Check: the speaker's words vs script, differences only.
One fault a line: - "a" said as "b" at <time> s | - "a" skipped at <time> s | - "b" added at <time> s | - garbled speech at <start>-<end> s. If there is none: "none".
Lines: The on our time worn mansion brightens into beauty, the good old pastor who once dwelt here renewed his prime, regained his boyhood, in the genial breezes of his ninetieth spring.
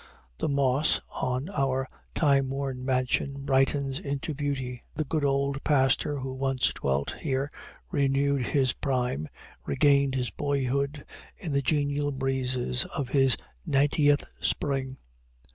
- "moss" added at 0.5 s